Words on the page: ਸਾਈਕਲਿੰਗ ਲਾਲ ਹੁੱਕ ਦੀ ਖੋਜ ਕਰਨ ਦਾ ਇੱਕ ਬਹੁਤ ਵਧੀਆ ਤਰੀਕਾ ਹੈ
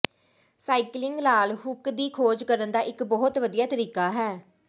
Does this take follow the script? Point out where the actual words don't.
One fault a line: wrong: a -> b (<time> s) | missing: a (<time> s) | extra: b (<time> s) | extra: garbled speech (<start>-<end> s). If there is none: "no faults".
no faults